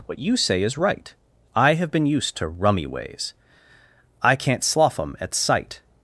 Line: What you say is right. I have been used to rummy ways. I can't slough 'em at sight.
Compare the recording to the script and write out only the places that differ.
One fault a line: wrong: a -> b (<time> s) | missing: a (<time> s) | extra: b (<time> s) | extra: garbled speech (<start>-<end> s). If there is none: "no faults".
no faults